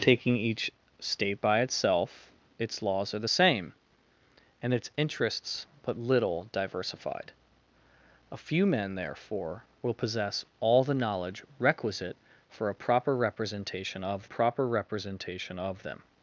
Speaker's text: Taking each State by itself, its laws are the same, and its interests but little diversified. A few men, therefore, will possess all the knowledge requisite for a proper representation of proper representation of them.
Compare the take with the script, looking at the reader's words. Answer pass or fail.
pass